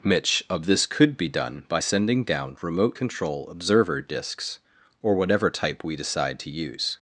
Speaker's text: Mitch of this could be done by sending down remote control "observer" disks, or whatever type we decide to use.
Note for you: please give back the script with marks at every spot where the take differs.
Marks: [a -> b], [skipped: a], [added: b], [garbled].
Mitch of this could be done by sending down remote control "observer" disks, or whatever type we decide to use.